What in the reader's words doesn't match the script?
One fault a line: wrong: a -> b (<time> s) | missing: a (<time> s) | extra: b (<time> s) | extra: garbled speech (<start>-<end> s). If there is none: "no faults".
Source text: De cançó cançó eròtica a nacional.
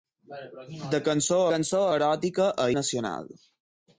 no faults